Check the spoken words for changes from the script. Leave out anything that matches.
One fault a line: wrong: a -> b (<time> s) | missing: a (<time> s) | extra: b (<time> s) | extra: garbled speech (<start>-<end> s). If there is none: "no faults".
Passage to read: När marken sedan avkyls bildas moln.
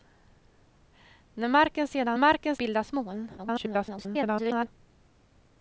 wrong: avkyls -> marken (2.2 s)
extra: garbled speech (3.4-4.7 s)